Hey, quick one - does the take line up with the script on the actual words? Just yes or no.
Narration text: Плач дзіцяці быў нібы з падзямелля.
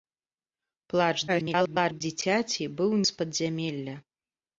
no